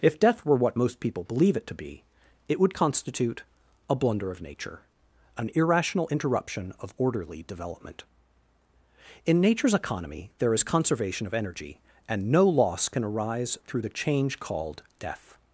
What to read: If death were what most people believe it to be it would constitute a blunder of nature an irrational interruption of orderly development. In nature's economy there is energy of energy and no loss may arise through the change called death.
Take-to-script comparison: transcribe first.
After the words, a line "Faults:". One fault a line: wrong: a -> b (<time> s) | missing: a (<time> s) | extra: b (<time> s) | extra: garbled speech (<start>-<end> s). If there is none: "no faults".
If death were what most people believe it to be it would constitute a blunder of nature an irrational interruption of orderly development. In nature's economy there is conservation of energy and no loss can arise through the change called death.
Faults:
wrong: energy -> conservation (10.6 s)
wrong: may -> can (12.9 s)